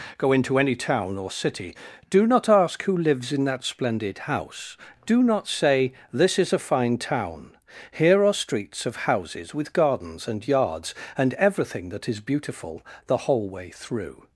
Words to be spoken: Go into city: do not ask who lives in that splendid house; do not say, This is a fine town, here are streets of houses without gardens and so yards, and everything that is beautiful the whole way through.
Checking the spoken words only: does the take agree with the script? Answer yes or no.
no